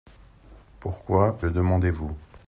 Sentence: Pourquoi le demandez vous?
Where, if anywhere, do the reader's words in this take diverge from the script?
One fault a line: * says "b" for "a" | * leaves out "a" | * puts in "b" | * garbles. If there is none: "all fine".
all fine